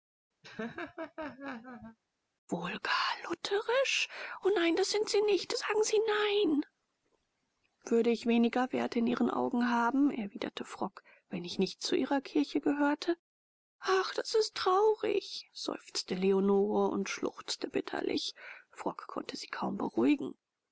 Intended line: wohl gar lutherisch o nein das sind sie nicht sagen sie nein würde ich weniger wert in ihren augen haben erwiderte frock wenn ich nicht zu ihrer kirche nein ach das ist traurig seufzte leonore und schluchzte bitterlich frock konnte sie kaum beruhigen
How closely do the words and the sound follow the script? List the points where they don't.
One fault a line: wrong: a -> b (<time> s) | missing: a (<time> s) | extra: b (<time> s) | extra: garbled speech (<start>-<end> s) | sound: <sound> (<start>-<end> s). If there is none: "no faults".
sound: laugh (0.4-2.0 s)
wrong: nein -> gehörte (12.6 s)